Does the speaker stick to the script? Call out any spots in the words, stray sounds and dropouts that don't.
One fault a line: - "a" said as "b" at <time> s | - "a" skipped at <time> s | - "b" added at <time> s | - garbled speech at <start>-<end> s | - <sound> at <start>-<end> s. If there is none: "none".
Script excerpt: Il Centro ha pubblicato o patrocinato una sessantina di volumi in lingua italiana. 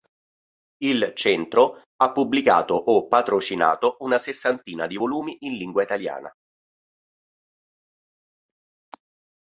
none